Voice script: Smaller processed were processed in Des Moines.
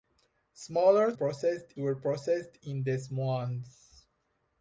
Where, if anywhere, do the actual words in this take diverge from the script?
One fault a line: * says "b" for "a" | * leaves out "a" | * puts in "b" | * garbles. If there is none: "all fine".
all fine